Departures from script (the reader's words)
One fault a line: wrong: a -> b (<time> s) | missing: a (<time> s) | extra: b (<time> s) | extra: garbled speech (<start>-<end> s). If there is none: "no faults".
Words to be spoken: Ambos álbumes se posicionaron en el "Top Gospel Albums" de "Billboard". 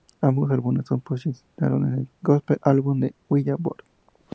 missing: Top (2.1 s)